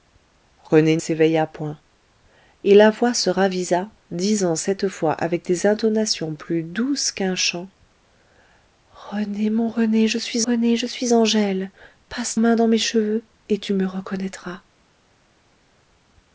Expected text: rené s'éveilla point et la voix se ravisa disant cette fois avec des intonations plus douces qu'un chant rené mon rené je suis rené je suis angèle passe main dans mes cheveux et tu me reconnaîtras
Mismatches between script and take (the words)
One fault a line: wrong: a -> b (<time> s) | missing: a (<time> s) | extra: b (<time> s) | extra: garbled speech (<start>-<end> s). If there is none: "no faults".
no faults